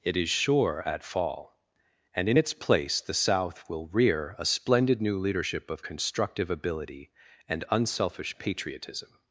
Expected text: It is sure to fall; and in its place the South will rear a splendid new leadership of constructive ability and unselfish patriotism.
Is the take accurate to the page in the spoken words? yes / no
no